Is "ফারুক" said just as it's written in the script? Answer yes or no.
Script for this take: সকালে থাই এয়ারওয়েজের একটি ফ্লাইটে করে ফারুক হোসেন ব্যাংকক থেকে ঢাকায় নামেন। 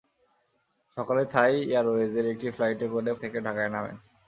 no